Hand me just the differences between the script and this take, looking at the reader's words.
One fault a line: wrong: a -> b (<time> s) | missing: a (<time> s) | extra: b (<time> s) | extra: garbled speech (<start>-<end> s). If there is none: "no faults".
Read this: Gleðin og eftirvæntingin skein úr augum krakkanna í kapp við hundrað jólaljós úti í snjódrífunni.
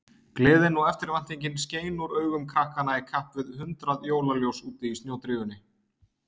no faults